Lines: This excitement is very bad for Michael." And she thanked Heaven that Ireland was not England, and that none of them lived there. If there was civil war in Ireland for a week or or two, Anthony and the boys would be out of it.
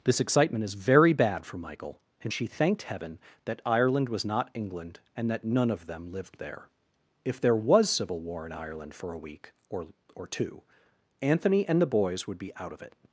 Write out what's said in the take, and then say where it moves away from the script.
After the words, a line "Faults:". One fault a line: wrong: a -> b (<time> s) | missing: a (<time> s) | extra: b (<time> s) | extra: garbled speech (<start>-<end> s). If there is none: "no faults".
This excitement is very bad for Michael." And she thanked Heaven that Ireland was not England, and that none of them lived there. If there was civil war in Ireland for a week or or two, Anthony and the boys would be out of it.
Faults:
no faults